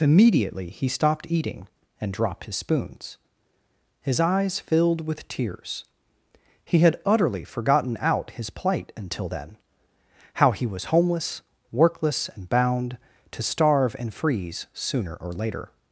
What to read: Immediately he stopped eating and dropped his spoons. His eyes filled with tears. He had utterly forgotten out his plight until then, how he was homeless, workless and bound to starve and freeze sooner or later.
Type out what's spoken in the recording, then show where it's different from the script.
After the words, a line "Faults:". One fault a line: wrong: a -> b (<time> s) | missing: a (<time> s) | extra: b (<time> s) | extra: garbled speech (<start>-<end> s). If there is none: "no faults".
Immediately he stopped eating and dropped his spoons. His eyes filled with tears. He had utterly forgotten out his plight until then, how he was homeless, workless and bound to starve and freeze sooner or later.
Faults:
no faults